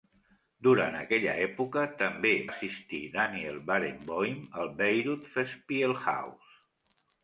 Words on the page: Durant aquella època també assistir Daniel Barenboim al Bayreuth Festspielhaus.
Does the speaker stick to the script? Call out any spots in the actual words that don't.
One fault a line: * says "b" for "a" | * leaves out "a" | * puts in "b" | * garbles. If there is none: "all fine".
all fine